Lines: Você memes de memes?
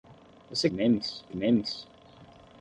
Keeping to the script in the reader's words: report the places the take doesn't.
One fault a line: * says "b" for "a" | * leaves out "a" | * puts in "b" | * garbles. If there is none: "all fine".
all fine